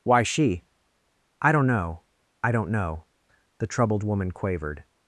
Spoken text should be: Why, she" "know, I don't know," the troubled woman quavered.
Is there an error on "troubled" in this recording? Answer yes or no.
no